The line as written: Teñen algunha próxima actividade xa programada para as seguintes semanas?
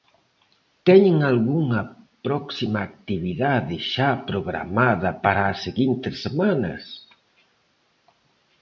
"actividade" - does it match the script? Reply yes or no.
yes